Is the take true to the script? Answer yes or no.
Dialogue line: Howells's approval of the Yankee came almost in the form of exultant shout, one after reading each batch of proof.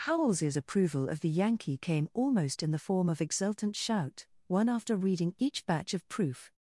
yes